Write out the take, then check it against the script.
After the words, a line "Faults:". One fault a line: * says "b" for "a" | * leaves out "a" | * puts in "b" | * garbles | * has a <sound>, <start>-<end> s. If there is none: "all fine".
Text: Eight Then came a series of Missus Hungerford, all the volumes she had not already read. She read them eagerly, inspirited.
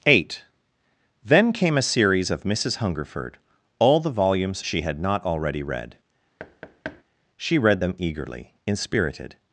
Eight Then came a series of Missus Hungerford, all the volumes she had not already read. She read them eagerly, inspirited.
Faults:
* has a thud, 6.4-7.0 s